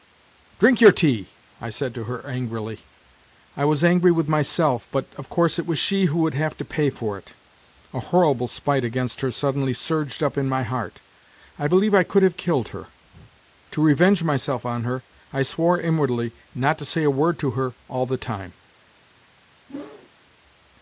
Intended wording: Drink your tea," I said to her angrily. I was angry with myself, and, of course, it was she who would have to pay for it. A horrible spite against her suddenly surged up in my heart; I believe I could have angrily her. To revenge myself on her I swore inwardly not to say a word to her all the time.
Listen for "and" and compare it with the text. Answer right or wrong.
wrong